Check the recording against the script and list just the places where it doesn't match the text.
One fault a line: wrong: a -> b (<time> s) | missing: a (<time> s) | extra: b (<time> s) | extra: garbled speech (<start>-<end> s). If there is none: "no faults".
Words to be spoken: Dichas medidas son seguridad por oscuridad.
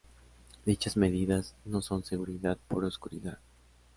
extra: no (1.6 s)